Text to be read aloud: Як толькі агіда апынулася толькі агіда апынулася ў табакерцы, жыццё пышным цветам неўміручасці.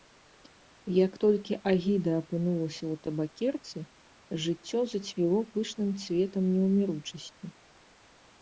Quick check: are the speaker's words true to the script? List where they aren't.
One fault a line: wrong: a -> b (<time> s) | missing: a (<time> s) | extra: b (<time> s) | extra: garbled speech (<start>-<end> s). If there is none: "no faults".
missing: толькі агіда апынулася (2.8 s)
extra: зацвіло (4.9 s)